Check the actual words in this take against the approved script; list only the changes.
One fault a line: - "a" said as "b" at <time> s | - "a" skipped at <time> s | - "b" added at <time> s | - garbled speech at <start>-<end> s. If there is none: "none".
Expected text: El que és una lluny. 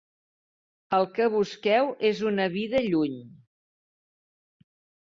- "busqueu" added at 1.4 s
- "vida" added at 2.6 s